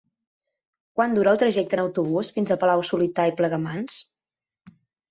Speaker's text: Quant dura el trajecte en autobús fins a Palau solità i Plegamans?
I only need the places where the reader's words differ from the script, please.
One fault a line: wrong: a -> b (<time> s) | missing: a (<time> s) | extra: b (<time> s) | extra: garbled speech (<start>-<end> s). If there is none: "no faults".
no faults